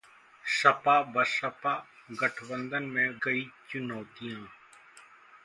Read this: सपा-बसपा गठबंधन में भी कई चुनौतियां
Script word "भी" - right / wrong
wrong